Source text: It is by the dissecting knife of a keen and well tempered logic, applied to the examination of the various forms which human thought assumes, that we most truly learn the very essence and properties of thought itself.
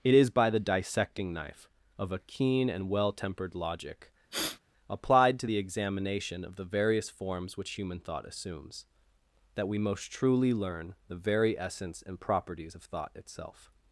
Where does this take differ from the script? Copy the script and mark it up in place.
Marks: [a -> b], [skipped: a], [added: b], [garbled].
It is by the dissecting knife of a keen and well tempered logic, applied to the examination of the various forms which human thought assumes, that we most truly learn the very essence and properties of thought itself.